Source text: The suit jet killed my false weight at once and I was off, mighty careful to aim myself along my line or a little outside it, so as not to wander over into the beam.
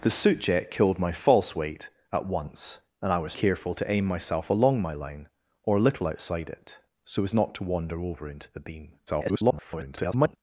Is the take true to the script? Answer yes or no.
no